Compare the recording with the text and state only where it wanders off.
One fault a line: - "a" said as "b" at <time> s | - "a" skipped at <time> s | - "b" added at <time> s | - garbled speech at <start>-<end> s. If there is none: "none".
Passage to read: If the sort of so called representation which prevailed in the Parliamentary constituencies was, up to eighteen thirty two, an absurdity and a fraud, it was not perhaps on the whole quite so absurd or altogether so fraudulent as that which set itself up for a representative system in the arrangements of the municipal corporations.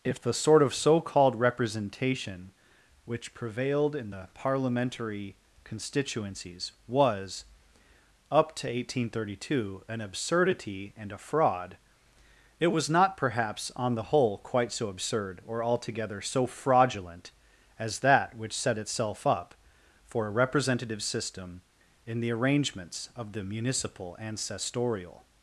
- "corporations" said as "ancestorial" at 24.2 s